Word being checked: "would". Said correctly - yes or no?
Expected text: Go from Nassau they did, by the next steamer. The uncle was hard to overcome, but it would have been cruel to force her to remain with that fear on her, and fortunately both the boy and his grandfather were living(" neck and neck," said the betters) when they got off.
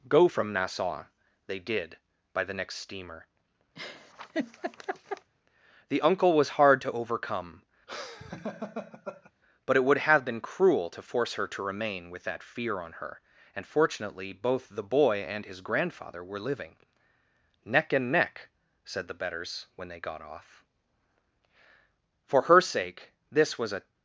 yes